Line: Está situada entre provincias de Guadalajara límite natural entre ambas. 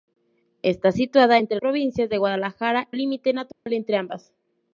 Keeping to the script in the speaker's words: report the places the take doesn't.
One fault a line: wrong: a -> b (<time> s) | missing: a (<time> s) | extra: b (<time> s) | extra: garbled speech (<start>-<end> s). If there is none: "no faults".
no faults